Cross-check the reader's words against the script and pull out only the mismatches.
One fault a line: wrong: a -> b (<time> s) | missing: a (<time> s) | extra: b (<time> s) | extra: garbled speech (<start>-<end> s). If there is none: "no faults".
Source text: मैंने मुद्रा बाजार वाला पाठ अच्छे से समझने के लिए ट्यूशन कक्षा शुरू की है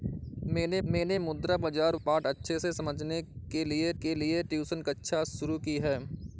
extra: मैंने (0.9 s)
missing: वाला (2.0 s)
extra: के लिए (4.0 s)